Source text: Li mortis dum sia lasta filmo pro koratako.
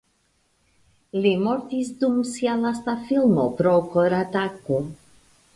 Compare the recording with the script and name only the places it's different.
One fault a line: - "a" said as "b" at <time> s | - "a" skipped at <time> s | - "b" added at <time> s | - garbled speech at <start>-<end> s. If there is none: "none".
none